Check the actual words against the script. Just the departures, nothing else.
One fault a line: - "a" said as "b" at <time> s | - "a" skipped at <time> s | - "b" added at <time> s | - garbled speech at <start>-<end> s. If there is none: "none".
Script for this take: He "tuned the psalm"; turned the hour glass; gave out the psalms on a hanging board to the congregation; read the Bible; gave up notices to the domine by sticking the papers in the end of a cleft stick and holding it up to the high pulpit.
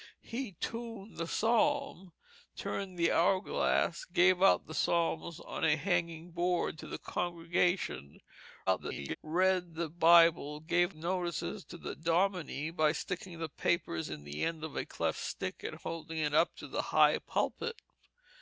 - garbled speech at 8.7-9.2 s
- "up" skipped at 11.0 s